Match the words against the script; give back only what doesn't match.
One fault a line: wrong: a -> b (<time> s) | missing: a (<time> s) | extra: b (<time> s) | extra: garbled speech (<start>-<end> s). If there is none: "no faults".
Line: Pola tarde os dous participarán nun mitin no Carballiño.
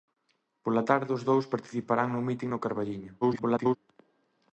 extra: garbled speech (3.2-3.8 s)